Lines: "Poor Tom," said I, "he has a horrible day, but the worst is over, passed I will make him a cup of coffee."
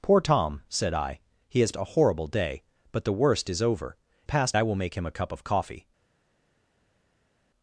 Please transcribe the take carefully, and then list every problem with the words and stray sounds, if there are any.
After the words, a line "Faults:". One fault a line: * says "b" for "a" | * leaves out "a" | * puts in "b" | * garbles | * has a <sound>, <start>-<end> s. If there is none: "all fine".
"Poor Tom," said I, "he has a horrible day, but the worst is over, passed I will make him a cup of coffee."
Faults:
all fine